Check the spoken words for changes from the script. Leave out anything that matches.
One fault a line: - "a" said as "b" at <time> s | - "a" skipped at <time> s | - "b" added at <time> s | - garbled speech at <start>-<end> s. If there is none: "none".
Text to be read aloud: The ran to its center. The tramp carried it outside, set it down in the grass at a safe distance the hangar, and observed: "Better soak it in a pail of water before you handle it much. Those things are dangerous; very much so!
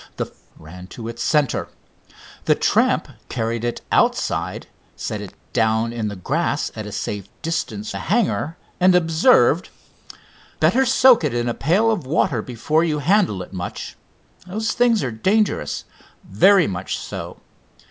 none